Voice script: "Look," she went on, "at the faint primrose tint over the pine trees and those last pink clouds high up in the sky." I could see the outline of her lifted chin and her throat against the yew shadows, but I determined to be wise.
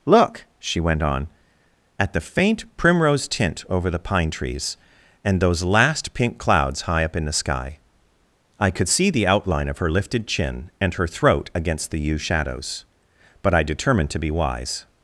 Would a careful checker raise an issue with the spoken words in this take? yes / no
no